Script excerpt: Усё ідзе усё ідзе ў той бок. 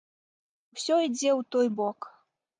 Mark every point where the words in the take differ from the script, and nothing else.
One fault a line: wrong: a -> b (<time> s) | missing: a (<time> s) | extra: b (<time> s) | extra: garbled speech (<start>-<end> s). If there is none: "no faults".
missing: усё ідзе (1.3 s)